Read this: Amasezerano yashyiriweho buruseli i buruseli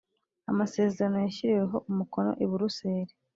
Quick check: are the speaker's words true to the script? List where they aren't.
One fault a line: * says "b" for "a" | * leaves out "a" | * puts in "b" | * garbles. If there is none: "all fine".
* says "umukono" for "buruseli"